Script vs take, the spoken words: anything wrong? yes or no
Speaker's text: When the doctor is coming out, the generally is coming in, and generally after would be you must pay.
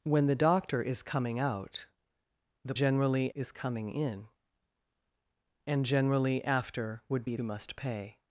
no